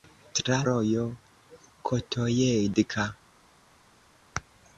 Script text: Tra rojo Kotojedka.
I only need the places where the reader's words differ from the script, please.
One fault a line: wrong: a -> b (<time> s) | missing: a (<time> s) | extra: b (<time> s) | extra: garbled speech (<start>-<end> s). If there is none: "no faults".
no faults